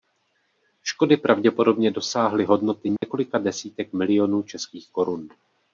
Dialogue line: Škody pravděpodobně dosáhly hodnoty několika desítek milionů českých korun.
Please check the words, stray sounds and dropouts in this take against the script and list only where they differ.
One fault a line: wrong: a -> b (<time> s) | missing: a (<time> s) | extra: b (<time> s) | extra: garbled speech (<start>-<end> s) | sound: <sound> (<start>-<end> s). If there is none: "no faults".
sound: dropout (3.0-3.0 s)